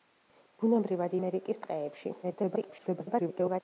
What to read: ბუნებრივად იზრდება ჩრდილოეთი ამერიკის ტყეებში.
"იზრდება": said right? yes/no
no